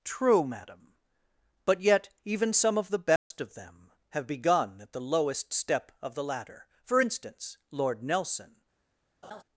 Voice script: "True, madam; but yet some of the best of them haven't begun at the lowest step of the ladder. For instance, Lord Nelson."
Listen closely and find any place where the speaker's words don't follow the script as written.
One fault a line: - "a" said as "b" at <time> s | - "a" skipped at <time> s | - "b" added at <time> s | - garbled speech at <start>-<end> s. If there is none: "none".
- "even" added at 2.2 s
- "haven't" said as "have" at 4.1 s